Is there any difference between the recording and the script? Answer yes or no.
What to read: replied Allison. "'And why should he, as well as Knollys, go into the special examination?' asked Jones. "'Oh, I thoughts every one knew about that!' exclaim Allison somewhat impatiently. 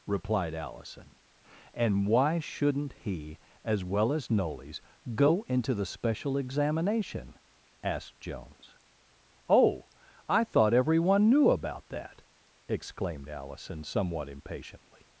yes